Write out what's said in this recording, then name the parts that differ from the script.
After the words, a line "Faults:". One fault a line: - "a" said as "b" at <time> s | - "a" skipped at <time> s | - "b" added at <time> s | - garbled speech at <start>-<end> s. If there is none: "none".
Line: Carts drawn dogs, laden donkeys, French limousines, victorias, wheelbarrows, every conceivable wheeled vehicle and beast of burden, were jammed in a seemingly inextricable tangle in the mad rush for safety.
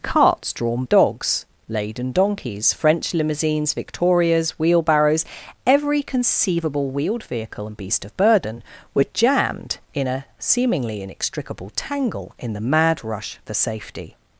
Carts drawn dogs, laden donkeys, French limousines, victorias, wheelbarrows, every conceivable wheeled vehicle and beast of burden, were jammed in a seemingly inextricable tangle in the mad rush for safety.
Faults:
none